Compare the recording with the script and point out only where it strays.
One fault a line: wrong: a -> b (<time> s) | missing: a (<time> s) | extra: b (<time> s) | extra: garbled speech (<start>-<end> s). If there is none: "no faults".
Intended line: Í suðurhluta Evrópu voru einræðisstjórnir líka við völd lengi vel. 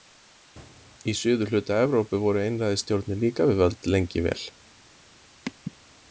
no faults